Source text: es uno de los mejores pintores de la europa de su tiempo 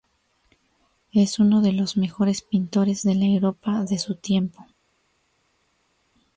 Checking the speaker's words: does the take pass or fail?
pass